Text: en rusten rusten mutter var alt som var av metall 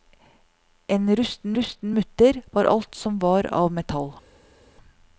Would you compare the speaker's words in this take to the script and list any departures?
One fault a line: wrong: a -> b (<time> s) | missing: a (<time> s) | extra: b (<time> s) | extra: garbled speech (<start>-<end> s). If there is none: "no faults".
no faults